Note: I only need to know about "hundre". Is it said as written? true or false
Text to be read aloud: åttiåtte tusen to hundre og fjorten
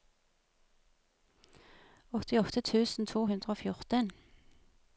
true